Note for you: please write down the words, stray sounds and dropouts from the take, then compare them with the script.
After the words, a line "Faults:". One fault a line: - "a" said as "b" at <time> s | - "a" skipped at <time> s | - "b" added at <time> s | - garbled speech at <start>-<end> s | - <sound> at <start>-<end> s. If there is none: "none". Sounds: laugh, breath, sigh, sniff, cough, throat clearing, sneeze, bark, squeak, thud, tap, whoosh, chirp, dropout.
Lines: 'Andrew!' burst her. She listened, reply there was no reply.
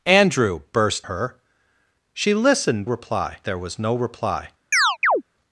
'Andrew!' burst her. She listened, reply there was no reply.
Faults:
- chirp at 4.7-5.2 s